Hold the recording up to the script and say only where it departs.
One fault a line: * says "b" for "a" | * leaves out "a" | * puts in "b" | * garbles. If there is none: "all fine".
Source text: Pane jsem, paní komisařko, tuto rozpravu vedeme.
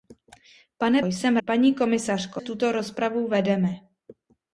all fine